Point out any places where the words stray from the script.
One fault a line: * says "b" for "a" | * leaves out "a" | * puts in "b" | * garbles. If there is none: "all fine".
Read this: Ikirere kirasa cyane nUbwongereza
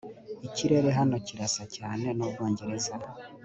* puts in "hano"